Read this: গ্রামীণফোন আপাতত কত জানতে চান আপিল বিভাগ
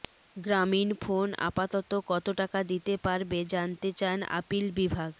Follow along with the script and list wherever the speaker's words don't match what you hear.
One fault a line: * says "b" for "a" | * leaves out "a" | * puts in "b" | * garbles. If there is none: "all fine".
* puts in "টাকা দিতে পারবে"